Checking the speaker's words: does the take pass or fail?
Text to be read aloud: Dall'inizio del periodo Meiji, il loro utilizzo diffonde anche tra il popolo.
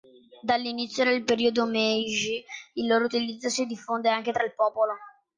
fail